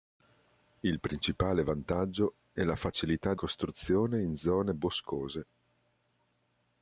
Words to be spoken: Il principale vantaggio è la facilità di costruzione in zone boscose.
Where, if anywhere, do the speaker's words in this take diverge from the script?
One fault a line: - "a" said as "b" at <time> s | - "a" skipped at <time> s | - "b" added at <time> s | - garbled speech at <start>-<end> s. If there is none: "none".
- "di" skipped at 3.4 s